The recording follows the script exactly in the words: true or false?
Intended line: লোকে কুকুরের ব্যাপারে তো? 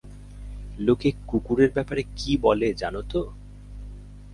false